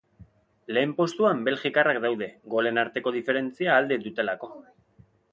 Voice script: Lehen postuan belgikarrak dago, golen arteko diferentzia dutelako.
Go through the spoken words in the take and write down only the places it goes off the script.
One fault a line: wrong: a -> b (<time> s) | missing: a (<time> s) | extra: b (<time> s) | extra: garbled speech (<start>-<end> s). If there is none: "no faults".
wrong: dago -> daude (2.0 s)
extra: alde (3.8 s)